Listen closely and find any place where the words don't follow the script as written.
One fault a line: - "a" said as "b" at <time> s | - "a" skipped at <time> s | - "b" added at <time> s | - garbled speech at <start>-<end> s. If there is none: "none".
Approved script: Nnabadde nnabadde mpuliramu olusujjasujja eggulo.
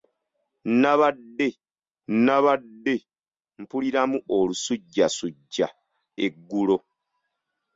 none